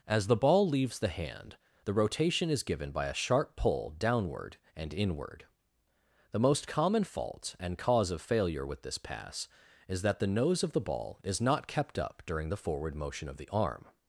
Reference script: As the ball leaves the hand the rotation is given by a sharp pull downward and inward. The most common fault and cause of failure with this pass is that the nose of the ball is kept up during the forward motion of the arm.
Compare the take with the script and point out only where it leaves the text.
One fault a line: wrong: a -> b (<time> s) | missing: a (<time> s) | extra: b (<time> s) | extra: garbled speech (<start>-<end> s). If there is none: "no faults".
extra: not (11.4 s)